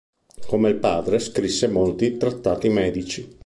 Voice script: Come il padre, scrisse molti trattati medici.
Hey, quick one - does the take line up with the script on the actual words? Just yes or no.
yes